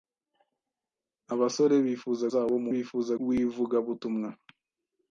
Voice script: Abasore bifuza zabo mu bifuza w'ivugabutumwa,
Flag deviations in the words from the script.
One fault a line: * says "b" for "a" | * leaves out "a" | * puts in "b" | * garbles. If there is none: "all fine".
all fine